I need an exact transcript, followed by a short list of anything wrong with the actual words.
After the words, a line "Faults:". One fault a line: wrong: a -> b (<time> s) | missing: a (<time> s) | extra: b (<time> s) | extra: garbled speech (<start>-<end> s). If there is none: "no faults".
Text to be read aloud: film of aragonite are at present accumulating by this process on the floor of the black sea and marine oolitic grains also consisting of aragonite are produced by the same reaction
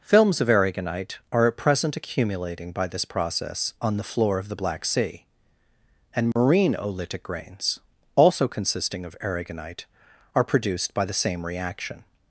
films of aragonite are at present accumulating by this process on the floor of the black sea and marine oolitic grains also consisting of aragonite are produced by the same reaction
Faults:
wrong: film -> films (0.0 s)